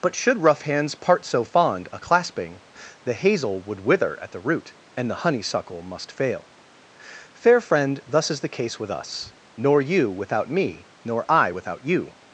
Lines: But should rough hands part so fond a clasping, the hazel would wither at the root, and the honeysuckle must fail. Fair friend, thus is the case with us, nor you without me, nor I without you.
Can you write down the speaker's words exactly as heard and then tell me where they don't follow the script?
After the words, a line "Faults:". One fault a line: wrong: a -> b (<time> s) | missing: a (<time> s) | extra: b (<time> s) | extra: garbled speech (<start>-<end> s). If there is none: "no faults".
But should rough hands part so fond a clasping, the hazel would wither at the root, and the honeysuckle must fail. Fair friend, thus is the case with us, nor you without me, nor I without you.
Faults:
no faults